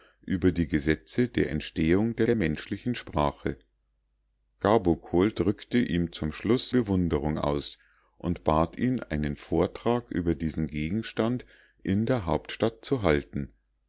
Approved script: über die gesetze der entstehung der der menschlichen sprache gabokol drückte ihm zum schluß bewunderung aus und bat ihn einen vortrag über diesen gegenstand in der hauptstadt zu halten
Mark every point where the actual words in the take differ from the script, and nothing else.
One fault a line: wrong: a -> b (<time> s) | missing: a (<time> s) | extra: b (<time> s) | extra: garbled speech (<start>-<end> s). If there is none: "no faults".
no faults